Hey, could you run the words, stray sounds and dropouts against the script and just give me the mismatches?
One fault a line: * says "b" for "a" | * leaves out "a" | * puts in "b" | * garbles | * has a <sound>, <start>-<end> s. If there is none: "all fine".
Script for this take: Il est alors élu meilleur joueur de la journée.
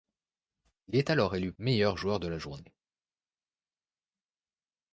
all fine